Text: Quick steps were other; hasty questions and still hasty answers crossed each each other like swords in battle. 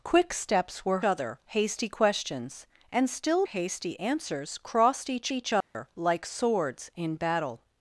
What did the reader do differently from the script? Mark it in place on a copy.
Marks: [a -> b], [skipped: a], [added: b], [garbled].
Quick steps were other; hasty questions and still hasty answers crossed each each other like swords in battle.